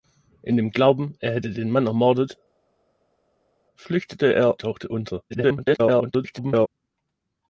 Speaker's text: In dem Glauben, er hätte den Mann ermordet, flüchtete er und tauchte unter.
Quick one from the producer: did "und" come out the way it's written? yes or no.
no